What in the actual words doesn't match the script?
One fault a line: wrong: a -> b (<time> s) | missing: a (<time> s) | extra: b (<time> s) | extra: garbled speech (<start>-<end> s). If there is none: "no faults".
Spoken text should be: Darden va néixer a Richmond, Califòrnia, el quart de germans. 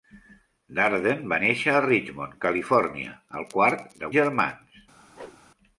no faults